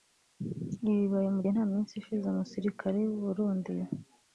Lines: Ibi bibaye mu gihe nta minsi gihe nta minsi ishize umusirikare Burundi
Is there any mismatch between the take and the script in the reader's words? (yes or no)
yes